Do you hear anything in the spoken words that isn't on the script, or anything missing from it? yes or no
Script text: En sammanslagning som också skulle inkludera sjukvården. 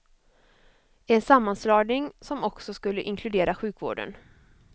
no